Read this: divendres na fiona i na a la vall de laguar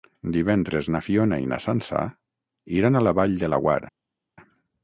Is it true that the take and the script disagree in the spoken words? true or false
true